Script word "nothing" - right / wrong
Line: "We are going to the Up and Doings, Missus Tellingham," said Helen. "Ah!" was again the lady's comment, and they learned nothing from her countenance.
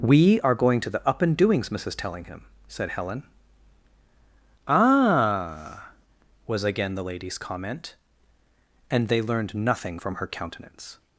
right